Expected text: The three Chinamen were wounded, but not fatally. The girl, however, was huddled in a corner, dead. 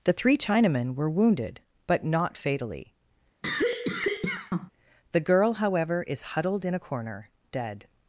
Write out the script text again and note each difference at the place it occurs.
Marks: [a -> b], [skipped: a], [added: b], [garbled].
The three Chinamen were wounded, but not fatally. The girl, however, [was -> is] huddled in a corner, dead.